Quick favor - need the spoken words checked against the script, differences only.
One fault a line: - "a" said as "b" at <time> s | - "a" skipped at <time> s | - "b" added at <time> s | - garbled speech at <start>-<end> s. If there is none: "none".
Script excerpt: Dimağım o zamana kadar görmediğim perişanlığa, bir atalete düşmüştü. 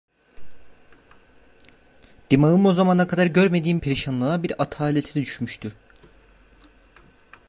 none